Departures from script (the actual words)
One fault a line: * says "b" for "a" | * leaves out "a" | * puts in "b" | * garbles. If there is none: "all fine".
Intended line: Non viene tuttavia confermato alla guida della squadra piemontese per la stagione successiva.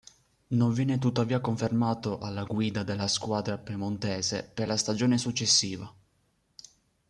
all fine